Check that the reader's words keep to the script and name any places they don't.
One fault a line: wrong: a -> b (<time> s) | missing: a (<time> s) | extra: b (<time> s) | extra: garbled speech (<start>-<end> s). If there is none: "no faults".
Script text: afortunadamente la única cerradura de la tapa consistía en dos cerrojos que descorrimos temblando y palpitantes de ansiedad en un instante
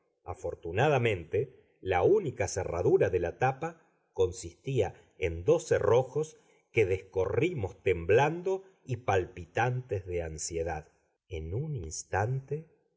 no faults